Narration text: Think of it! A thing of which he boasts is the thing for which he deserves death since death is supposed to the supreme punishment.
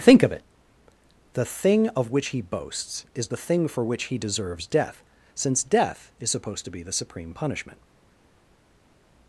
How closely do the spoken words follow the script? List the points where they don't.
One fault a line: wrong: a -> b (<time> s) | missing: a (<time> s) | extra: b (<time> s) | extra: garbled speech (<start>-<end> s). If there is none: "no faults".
wrong: A -> The (1.3 s)
extra: be (6.7 s)